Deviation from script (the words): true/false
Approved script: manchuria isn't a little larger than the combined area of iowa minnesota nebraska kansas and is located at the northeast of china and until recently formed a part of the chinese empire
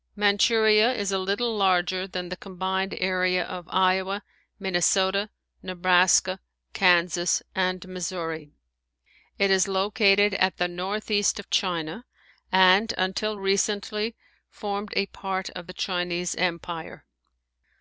true